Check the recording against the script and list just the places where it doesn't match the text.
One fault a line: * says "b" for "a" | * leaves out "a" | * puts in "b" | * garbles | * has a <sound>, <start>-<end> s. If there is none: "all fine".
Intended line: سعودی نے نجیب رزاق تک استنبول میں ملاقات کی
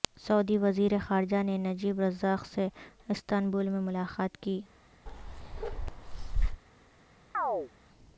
* puts in "وزیر خارجہ"
* says "سے" for "تک"
* has a bark, 5.1-6.6 s
* has a chirp, 7.3-7.7 s